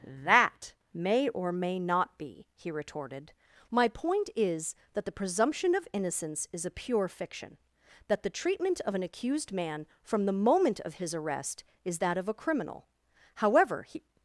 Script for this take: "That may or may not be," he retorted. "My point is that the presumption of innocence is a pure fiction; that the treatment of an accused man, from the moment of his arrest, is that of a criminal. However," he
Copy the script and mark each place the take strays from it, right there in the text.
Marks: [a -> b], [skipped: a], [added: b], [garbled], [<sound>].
"That may or may not be," he retorted. "My point is that the presumption of innocence is a pure fiction; that the treatment of an accused man, from the moment of his arrest, is that of a criminal. However," he